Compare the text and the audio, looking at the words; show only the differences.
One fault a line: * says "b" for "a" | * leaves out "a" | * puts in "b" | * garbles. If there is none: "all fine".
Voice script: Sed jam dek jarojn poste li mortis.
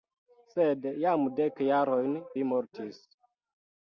* leaves out "poste"